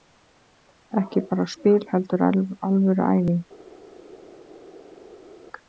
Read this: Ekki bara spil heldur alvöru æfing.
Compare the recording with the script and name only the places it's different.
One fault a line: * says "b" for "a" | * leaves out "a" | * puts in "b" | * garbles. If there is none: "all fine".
all fine